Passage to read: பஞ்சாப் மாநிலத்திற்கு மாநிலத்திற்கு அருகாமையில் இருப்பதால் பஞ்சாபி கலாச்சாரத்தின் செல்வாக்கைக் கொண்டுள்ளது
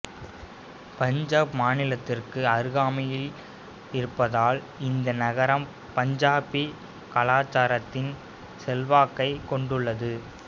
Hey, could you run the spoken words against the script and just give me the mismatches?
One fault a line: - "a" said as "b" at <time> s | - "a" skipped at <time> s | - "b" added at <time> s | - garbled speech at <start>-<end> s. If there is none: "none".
- "மாநிலத்திற்கு" skipped at 2.4 s
- "இந்த நகரம்" added at 4.8 s